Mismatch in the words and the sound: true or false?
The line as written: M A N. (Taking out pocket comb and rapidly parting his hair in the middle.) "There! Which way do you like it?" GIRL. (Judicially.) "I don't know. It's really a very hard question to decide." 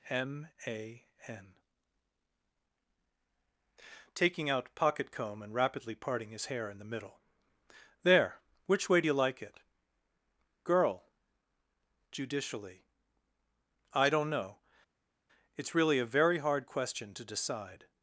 false